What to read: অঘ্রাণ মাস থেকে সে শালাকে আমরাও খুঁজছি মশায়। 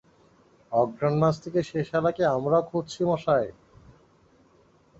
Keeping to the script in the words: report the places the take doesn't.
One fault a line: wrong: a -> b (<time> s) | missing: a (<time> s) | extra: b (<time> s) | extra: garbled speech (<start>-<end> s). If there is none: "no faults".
no faults